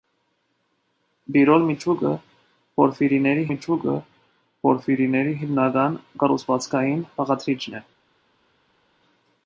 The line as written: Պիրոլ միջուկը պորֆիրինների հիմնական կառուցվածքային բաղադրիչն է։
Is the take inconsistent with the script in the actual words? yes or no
yes